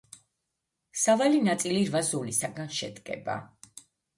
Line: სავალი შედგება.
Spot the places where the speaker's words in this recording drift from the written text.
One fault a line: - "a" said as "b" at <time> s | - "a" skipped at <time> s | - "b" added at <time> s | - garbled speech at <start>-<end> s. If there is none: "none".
- "ნაწილი რვა ზოლისაგან" added at 1.5 s